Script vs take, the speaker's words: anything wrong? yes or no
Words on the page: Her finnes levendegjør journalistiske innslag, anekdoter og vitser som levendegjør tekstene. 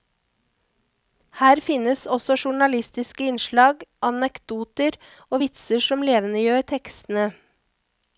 yes